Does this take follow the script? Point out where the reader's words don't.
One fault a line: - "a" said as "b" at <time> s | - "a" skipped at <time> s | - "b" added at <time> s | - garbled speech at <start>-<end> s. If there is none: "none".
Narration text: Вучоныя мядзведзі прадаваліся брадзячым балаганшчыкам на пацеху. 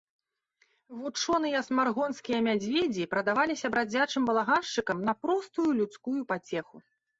- "смаргонскія" added at 1.7 s
- "простую людскую" added at 5.2 s